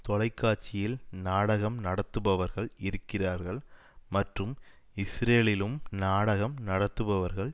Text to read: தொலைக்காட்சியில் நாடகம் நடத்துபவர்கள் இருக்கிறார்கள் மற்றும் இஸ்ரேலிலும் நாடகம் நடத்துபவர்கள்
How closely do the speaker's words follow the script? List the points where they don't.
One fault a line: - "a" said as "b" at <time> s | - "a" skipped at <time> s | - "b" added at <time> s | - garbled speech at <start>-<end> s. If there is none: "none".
none